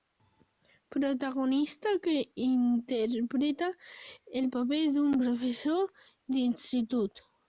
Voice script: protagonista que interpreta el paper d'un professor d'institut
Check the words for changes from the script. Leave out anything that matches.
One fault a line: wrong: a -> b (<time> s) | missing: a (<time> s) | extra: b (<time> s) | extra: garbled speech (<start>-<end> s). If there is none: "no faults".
no faults